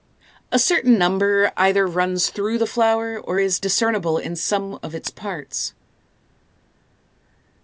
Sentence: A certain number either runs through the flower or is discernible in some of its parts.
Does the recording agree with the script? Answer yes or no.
yes